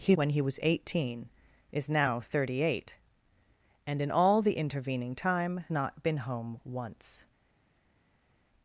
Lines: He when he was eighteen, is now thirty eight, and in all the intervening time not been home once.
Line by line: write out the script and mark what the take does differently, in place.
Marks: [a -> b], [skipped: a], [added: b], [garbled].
He when he was eighteen, is now thirty eight, and in all the intervening time not been home once.